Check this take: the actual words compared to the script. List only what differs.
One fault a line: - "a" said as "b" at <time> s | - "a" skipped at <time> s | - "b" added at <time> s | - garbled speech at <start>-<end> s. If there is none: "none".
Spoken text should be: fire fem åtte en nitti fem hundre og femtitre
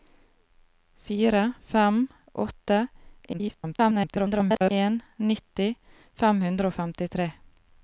- garbled speech at 3.3-4.7 s